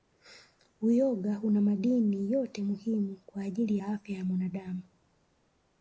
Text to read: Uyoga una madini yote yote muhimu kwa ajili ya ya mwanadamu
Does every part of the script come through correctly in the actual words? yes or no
no